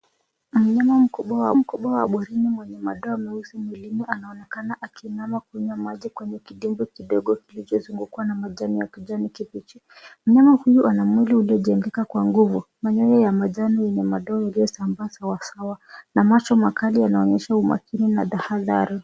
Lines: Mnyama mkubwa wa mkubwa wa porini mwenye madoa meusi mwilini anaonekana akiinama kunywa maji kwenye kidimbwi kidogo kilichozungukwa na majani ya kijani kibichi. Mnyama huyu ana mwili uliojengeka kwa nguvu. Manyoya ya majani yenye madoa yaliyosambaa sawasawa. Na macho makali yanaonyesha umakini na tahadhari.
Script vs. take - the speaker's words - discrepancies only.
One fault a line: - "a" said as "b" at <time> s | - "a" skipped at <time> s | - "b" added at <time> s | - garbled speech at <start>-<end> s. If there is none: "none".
none